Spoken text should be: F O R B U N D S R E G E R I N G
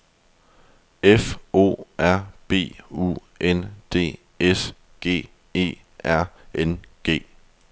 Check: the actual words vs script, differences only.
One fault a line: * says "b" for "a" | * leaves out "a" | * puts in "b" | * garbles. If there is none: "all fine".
* leaves out "R E"
* leaves out "I"